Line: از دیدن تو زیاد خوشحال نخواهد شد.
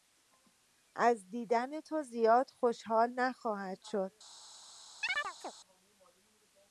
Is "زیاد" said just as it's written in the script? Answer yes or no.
yes